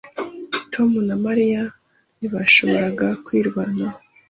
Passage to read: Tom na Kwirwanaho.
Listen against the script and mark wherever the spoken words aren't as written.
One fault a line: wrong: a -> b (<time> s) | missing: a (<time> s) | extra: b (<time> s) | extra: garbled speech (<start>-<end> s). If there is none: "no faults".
extra: Mariya ntibashoboraga (1.2 s)